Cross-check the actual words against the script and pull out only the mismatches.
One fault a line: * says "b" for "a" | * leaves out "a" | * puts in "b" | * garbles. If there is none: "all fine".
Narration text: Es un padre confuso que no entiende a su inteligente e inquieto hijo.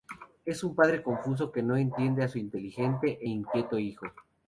all fine